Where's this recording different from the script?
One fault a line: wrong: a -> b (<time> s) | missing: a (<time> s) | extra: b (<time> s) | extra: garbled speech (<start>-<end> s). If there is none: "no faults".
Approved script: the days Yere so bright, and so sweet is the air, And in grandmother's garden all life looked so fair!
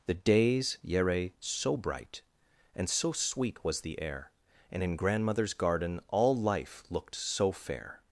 wrong: is -> was (3.6 s)